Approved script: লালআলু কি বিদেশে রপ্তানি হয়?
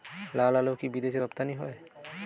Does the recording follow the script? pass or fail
pass